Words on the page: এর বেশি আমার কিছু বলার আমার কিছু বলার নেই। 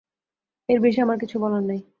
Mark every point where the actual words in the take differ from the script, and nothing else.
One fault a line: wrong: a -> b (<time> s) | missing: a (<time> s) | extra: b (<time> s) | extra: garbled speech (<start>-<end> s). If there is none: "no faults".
missing: আমার কিছু বলার (1.6 s)